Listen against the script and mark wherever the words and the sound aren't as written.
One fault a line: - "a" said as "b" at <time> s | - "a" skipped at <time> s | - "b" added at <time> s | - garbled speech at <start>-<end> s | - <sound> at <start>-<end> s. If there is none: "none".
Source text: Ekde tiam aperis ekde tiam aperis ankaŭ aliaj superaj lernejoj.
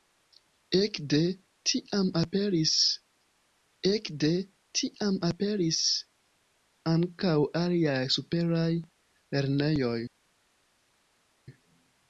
none